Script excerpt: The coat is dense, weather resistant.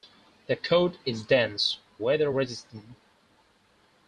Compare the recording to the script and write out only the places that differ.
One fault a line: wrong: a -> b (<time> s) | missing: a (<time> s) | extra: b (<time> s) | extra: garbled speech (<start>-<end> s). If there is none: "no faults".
no faults